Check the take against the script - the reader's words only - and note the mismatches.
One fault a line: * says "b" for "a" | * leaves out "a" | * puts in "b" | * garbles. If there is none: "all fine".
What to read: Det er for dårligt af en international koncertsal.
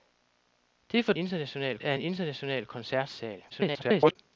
* says "international" for "dårligt"
* garbles